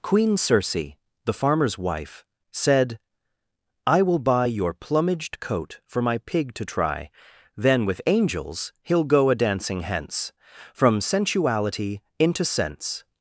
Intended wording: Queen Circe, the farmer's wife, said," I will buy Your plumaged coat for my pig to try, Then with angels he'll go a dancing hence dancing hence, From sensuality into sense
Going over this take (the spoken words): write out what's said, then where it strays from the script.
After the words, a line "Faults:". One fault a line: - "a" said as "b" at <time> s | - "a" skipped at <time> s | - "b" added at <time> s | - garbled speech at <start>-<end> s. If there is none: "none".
Queen Circe, the farmer's wife, said," I will buy Your plumaged coat for my pig to try, Then with angels he'll go a dancing hence, From sensuality into sense
Faults:
- "dancing hence" skipped at 10.3 s